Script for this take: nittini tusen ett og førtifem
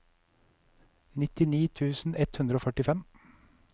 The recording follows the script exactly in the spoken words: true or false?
false